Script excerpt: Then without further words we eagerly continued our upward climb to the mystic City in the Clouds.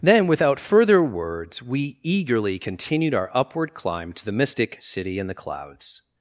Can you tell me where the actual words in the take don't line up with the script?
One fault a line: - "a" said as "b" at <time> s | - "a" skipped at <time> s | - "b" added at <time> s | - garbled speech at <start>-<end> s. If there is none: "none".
none